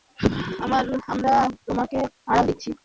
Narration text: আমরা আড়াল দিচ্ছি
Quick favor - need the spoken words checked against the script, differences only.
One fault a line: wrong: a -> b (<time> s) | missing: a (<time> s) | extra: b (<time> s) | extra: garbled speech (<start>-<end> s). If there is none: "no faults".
extra: তোমাকে (1.7 s)